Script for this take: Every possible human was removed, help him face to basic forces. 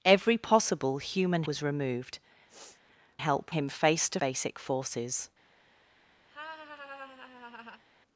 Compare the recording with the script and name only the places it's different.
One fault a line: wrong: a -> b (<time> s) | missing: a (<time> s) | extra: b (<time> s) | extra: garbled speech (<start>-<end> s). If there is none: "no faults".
no faults